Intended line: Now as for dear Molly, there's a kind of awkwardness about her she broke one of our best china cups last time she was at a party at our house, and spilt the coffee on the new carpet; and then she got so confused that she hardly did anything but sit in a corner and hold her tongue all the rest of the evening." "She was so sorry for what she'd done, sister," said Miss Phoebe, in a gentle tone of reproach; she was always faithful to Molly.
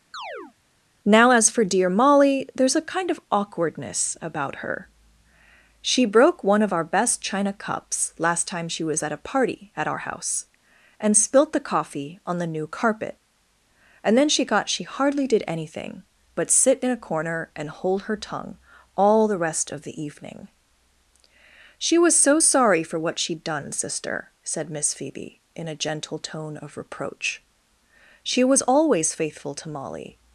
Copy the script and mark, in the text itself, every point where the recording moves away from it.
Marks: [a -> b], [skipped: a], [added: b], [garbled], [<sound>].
[chirp] Now as for dear Molly, there's a kind of awkwardness about her she broke one of our best china cups last time she was at a party at our house, and spilt the coffee on the new carpet; and then she got [skipped: so confused that] she hardly did anything but sit in a corner and hold her tongue all the rest of the evening." "She was so sorry for what she'd done, sister," said Miss Phoebe, in a gentle tone of reproach; she was always faithful to Molly.